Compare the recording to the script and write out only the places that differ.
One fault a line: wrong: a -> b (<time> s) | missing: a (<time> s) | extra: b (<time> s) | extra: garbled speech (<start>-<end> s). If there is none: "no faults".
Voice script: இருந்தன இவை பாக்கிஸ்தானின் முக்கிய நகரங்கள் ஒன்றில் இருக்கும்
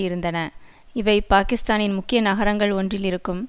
no faults